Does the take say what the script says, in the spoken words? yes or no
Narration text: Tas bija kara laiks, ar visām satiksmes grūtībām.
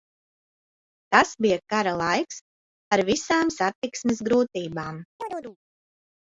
yes